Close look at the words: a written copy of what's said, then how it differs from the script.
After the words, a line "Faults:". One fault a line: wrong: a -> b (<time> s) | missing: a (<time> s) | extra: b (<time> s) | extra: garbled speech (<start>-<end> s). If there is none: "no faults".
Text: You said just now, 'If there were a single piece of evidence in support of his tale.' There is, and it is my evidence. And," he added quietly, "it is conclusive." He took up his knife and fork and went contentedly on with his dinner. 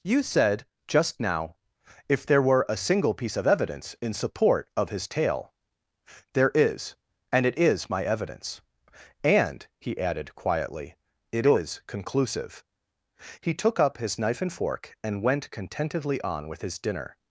You said just now, 'If there were a single piece of evidence in support of his tale.' There is, and it is my evidence. And," he added quietly, "it is conclusive." He took up his knife and fork and went contentedly on with his dinner.
Faults:
no faults